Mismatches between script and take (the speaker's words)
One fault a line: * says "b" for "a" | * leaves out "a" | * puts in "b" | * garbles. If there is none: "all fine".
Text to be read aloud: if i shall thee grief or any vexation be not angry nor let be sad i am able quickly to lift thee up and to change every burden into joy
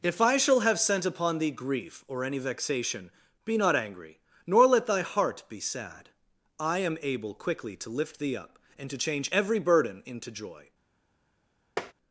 * puts in "have sent upon"
* puts in "thy heart"